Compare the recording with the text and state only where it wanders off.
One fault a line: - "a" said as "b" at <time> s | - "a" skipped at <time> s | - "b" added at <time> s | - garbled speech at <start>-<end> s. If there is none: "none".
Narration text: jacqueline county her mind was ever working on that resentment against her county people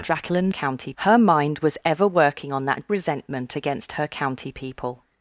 none